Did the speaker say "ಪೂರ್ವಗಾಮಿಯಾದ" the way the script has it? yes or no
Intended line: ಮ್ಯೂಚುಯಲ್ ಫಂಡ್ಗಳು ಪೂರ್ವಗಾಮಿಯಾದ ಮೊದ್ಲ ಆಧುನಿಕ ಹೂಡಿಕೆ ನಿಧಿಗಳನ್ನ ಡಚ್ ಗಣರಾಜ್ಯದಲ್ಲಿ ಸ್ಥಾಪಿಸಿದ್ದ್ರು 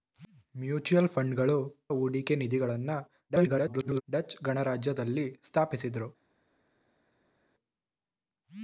no